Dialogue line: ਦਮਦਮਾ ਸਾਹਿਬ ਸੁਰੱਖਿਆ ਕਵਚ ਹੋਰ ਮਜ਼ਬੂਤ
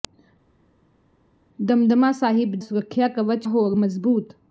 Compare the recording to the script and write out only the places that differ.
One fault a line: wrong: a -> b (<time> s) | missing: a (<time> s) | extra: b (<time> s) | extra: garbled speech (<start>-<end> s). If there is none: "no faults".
no faults